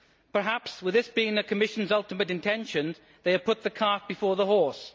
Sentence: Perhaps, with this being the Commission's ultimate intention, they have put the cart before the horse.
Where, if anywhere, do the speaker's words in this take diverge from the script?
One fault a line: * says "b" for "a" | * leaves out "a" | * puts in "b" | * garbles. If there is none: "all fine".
all fine